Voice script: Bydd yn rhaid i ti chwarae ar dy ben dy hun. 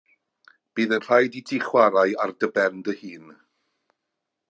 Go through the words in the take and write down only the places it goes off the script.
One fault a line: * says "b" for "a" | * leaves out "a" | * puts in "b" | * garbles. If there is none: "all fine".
all fine